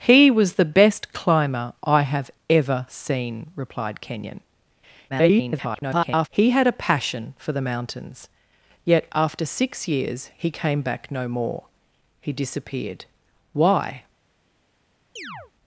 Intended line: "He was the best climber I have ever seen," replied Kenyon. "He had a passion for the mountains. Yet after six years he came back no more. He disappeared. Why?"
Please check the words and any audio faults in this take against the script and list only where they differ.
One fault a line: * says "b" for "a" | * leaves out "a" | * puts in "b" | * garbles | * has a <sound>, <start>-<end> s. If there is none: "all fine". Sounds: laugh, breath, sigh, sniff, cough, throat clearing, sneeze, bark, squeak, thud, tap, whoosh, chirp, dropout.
* garbles
* has a chirp, 15.2-15.5 s